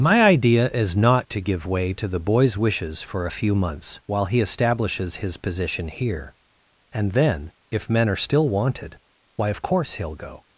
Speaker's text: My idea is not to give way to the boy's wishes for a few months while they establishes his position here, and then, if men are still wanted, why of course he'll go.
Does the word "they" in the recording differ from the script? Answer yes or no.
yes